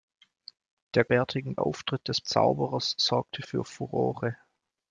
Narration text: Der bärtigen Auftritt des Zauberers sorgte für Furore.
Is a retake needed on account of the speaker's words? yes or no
no